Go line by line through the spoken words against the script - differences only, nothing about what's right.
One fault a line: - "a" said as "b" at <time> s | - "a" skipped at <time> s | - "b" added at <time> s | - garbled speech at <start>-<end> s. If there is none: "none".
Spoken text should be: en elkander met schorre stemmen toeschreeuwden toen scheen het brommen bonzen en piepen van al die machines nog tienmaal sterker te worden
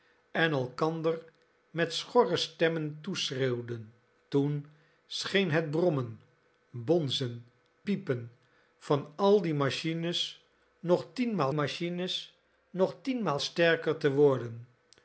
- "en" skipped at 7.5 s
- "machines nog tienmaal" added at 11.5 s